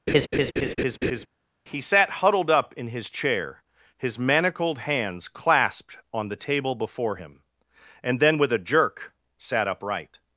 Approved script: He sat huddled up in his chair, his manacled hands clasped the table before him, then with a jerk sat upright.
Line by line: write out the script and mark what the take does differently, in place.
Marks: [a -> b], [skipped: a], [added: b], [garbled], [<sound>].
[laugh] He sat huddled up in his chair, his manacled hands clasped [added: on] the table before him, [added: and] then with a jerk sat upright.